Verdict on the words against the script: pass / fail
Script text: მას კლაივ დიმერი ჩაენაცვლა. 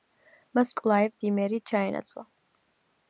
pass